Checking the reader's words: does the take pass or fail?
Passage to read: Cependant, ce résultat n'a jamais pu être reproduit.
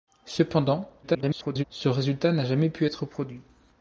fail